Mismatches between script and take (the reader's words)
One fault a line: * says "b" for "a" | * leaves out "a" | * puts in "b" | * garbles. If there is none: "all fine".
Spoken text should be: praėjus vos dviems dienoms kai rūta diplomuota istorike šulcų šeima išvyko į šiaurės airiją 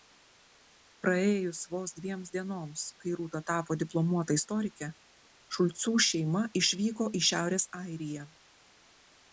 * puts in "tapo"